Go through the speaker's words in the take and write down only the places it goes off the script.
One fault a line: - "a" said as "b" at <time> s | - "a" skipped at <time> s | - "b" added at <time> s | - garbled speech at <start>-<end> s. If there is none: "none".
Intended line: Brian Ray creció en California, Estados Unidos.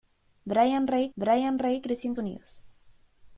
- "brian Ray" added at 1.2 s
- "California Estados" skipped at 2.2 s